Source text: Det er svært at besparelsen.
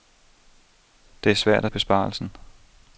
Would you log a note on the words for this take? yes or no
no